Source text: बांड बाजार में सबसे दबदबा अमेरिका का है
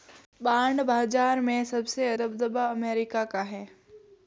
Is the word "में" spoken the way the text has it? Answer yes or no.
yes